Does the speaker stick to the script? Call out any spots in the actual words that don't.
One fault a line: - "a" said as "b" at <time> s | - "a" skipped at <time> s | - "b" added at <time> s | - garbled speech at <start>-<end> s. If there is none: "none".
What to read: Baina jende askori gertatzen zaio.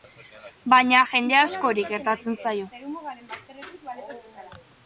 none